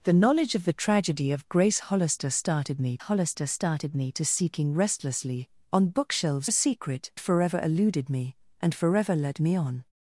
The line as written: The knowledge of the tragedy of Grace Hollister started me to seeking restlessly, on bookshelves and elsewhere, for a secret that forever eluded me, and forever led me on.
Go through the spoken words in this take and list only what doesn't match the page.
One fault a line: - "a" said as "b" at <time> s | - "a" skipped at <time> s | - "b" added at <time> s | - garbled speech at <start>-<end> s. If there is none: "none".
- "Hollister started me" added at 3.0 s
- "and elsewhere for" skipped at 6.5 s
- "that" skipped at 7.1 s